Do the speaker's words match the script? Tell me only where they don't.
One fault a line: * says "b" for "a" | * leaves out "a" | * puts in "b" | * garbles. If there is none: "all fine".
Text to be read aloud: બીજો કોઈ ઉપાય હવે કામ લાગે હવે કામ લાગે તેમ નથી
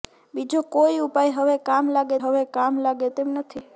all fine